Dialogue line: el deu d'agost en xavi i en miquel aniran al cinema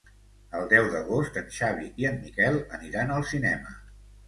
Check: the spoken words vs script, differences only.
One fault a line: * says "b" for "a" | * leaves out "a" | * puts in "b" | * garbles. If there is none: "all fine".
all fine